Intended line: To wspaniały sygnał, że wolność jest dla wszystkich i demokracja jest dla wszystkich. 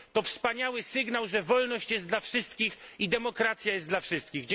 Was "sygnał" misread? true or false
false